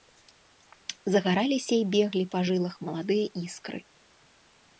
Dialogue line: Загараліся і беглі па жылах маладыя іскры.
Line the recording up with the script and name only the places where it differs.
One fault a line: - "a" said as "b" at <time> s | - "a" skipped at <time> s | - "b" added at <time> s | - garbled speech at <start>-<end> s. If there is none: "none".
none